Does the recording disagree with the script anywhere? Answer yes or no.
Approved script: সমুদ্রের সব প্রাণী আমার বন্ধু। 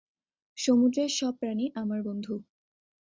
no